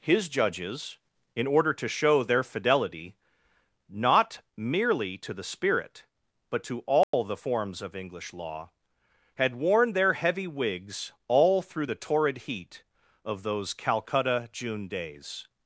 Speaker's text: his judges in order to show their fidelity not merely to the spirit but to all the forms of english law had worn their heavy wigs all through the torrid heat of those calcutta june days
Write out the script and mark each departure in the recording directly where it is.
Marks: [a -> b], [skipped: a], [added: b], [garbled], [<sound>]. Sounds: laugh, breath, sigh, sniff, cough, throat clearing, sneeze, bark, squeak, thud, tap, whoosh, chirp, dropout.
his judges in order to show their fidelity not merely to the spirit but to all [dropout] the forms of english law had worn their heavy wigs all through the torrid heat of those calcutta june days